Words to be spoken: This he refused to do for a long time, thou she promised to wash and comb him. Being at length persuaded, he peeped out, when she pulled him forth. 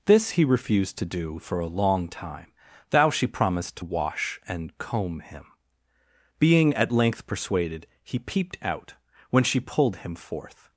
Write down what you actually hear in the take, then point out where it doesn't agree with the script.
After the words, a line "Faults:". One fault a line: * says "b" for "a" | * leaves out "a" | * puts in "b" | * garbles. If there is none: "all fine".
This he refused to do for a long time, thou she promised to wash and comb him. Being at length persuaded, he peeped out, when she pulled him forth.
Faults:
all fine